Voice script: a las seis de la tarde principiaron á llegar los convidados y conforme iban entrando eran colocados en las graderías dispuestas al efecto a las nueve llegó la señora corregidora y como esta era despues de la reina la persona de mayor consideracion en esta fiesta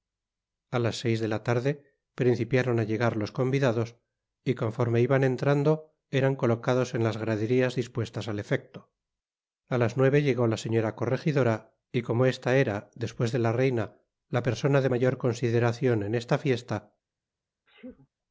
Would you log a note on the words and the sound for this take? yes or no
yes